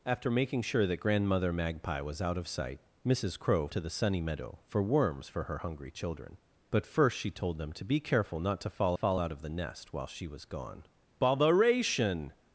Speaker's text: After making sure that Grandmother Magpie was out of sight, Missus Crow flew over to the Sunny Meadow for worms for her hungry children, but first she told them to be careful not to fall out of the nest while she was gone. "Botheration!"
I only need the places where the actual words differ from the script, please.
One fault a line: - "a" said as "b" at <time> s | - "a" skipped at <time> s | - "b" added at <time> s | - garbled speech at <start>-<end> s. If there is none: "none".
- "flew over" skipped at 3.7 s
- "fall" added at 8.9 s